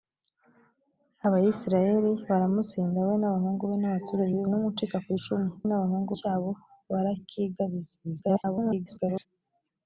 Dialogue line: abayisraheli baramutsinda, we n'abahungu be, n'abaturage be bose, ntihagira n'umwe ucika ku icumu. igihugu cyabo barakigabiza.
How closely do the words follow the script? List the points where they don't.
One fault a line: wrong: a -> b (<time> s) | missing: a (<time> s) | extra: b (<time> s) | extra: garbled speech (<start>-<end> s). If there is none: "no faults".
missing: bose ntihagira (4.4 s)
wrong: igihugu -> n'abahungu (5.6 s)
extra: garbled speech (8.0-9.3 s)